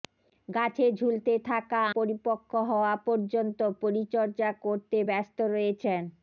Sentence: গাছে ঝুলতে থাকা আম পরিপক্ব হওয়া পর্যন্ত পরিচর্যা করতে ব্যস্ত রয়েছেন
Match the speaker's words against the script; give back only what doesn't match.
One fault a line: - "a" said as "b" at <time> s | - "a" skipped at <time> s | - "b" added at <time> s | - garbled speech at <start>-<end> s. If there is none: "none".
- "আম" skipped at 1.8 s